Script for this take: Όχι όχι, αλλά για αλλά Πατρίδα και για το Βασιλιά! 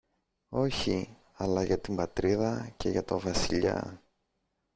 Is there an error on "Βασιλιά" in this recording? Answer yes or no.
no